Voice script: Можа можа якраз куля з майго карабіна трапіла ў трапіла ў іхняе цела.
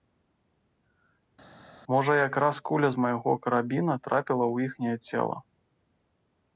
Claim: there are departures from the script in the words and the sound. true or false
true